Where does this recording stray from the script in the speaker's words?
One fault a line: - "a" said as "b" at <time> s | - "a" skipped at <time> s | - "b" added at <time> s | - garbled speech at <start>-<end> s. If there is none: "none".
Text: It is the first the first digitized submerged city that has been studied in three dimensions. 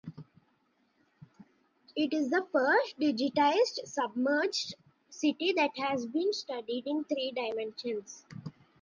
- "the first" skipped at 3.0 s